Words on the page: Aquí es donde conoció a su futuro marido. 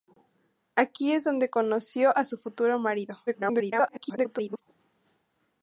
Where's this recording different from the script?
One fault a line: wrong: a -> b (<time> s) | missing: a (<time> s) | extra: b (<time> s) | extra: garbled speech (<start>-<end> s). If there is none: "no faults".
extra: garbled speech (3.3-4.6 s)